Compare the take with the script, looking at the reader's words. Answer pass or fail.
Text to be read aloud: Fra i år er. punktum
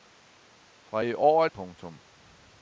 pass